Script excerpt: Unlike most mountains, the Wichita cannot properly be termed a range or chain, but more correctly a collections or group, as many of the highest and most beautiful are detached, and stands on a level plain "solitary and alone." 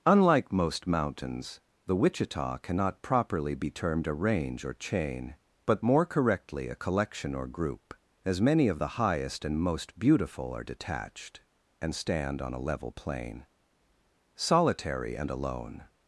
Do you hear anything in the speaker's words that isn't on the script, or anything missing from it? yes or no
yes